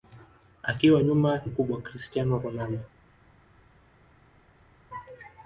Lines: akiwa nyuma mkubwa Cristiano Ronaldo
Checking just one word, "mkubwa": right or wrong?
right